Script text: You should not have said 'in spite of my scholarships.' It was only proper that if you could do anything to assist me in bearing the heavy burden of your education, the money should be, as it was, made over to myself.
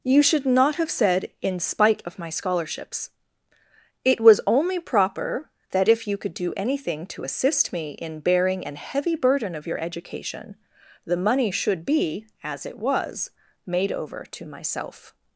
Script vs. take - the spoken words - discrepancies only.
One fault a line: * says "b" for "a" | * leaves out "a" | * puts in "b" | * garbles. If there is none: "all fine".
* says "an" for "the"